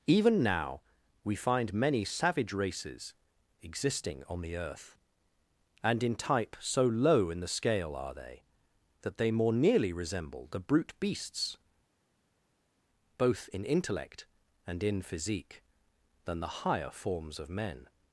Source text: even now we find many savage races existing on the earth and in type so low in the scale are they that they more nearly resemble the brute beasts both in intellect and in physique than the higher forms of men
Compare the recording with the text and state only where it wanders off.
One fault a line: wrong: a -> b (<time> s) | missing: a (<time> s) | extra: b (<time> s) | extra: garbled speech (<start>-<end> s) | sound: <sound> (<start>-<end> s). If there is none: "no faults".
no faults